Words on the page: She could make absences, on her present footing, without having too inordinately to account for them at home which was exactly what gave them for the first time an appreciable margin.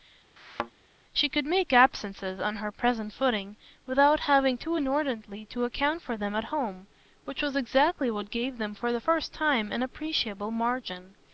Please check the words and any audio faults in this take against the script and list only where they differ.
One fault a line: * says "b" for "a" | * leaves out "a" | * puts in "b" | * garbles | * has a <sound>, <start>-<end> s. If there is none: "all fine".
* has a thud, 0.4-0.7 s